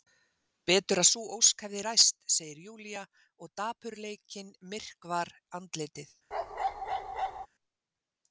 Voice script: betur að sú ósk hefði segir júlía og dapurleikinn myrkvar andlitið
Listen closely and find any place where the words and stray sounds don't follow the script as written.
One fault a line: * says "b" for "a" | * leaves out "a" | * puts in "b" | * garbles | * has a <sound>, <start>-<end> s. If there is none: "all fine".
* puts in "ræst"
* has a bark, 6.3-7.5 s